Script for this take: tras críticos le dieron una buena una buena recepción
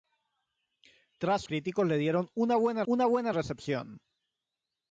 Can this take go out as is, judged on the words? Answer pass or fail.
pass